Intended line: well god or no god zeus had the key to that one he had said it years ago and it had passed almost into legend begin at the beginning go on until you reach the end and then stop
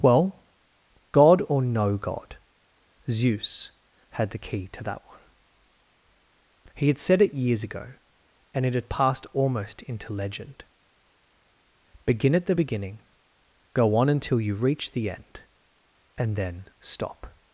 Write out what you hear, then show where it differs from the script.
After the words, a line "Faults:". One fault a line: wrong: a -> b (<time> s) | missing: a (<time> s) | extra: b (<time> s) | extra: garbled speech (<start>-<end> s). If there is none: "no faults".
well god or no god zeus had the key to that one he had said it years ago and it had passed almost into legend begin at the beginning go on until you reach the end and then stop
Faults:
no faults